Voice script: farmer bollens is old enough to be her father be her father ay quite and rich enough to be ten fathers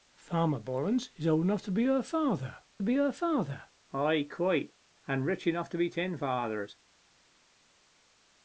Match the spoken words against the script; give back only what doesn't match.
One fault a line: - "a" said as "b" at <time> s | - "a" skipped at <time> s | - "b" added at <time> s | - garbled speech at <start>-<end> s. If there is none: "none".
none